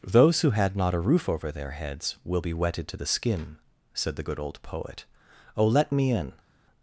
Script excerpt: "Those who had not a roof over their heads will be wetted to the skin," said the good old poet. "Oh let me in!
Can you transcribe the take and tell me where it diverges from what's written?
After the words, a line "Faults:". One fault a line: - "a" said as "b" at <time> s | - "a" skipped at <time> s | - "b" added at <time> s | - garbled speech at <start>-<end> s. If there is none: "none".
"Those who had not a roof over their heads will be wetted to the skin," said the good old poet. "Oh let me in!
Faults:
none